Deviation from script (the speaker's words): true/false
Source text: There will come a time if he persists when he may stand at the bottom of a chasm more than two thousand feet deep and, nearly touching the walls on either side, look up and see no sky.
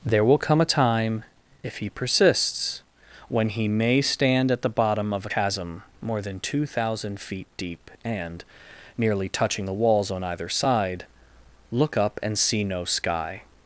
true